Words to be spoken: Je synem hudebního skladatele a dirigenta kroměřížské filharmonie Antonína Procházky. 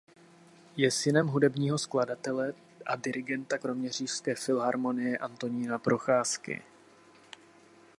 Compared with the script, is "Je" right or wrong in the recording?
right